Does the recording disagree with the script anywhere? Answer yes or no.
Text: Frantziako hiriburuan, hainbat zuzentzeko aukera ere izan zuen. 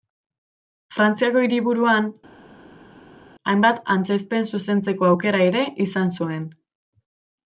yes